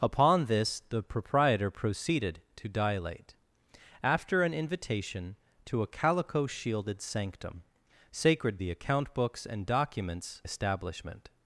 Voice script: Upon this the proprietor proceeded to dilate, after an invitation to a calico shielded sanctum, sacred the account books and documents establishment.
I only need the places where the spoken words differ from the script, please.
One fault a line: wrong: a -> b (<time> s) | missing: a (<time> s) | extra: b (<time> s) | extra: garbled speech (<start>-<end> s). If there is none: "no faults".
no faults